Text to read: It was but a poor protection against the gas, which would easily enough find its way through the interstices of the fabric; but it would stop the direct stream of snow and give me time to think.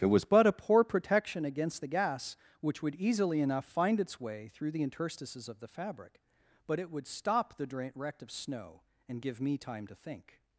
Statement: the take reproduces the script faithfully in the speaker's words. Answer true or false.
false